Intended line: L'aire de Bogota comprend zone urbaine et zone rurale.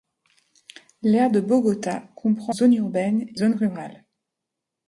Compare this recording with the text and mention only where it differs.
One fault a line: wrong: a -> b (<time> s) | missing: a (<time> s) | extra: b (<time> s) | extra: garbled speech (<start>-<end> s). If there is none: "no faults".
no faults